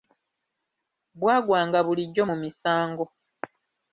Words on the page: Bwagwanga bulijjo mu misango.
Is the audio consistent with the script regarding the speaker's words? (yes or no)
yes